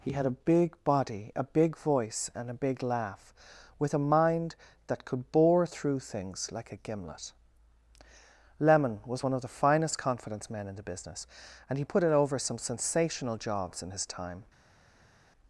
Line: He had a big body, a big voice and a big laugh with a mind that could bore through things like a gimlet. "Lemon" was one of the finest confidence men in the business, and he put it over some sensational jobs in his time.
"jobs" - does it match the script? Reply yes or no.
yes